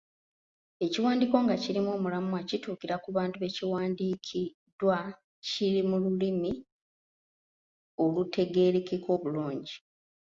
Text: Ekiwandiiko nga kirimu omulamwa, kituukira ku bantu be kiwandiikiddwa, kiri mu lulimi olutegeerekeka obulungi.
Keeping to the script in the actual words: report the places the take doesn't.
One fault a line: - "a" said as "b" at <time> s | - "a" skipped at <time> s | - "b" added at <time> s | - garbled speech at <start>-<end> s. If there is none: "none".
none